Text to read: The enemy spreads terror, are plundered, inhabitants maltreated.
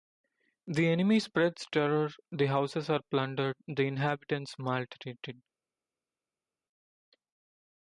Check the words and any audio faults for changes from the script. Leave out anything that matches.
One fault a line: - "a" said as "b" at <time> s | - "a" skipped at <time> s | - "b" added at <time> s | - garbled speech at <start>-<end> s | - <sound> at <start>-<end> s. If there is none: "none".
- "the houses" added at 2.3 s
- "the" added at 3.7 s